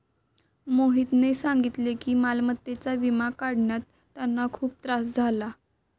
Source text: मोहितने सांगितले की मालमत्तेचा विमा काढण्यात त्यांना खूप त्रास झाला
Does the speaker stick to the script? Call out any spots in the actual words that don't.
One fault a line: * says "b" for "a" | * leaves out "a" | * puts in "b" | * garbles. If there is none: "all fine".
all fine